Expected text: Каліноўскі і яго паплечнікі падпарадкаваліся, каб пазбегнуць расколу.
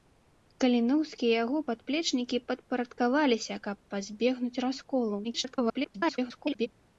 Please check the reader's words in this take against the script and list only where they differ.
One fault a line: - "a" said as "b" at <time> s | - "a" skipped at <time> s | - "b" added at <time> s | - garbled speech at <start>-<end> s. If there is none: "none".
- garbled speech at 5.2-6.7 s